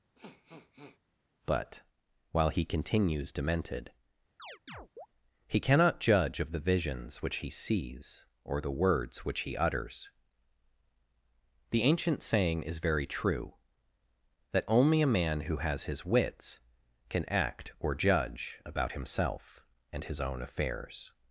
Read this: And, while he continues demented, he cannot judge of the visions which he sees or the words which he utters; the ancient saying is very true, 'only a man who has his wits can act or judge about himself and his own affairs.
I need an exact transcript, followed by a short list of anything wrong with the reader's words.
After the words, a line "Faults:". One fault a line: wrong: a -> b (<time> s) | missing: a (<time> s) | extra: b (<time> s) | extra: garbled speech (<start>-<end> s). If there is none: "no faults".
But, while he continues demented, he cannot judge of the visions which he sees or the words which he utters; the ancient saying is very true, that 'only a man who has his wits can act or judge about himself and his own affairs.
Faults:
wrong: And -> But (1.5 s)
extra: that (14.5 s)